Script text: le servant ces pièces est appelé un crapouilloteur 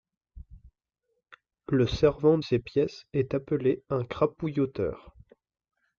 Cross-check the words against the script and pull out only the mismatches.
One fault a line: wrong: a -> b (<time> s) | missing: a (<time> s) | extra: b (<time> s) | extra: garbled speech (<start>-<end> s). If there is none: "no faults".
no faults